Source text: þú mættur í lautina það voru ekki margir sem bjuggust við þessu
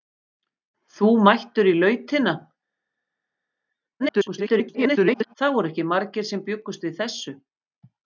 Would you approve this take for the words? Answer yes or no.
no